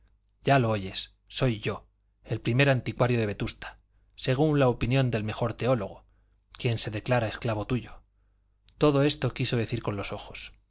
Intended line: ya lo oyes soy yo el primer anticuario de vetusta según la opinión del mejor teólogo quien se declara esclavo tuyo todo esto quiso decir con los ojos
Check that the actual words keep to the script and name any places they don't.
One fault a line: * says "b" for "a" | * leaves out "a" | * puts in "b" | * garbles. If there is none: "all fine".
all fine